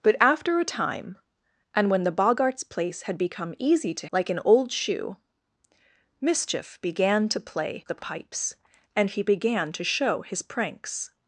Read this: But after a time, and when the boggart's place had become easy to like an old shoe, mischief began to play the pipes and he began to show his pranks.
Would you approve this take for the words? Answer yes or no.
yes